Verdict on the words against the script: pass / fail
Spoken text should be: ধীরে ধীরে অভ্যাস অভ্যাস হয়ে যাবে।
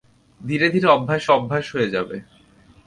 pass